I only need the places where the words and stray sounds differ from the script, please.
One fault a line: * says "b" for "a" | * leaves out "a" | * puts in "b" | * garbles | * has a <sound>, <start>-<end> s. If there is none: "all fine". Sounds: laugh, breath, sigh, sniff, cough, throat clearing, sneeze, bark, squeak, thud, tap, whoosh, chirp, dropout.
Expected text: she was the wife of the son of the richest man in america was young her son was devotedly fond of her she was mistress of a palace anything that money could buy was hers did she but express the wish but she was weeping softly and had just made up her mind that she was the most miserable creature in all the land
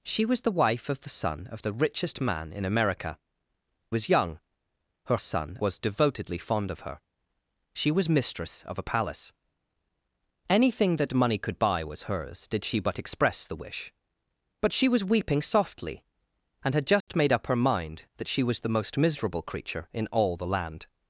* has a dropout, 17.0-17.1 s